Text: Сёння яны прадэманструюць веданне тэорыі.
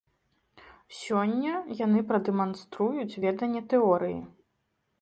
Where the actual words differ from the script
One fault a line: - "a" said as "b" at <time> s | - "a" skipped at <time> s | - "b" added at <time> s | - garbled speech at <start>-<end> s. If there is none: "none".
none